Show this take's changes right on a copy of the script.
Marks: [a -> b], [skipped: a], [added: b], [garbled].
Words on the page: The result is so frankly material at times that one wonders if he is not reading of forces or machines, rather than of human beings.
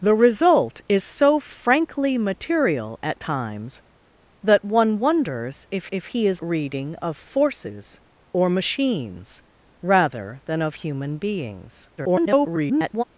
The result is so frankly material at times that one wonders if [added: if] he is [skipped: not] reading of forces or machines, rather than of human beings. [garbled]